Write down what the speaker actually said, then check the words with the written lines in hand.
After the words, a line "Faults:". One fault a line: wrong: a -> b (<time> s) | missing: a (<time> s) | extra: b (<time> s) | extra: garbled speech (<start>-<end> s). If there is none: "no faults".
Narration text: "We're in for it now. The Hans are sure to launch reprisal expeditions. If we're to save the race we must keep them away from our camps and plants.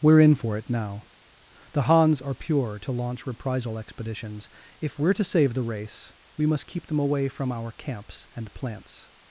"We're in for it now. The Hans are pure to launch reprisal expeditions. If we're to save the race we must keep them away from our camps and plants.
Faults:
wrong: sure -> pure (2.3 s)